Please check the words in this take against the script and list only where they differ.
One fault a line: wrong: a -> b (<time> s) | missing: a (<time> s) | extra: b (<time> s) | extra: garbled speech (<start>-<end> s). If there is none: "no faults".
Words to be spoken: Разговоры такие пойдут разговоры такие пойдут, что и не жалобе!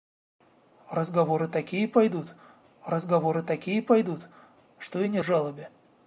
no faults